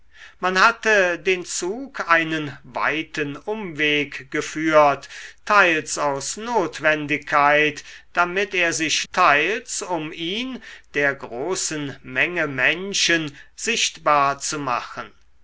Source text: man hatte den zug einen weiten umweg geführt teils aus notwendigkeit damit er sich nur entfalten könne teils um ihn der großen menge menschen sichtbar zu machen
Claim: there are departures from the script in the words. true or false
true